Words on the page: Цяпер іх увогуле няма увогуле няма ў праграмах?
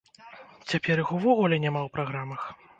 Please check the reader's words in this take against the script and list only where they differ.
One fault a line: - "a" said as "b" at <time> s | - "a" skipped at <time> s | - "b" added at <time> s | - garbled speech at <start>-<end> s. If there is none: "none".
- "увогуле няма" skipped at 1.8 s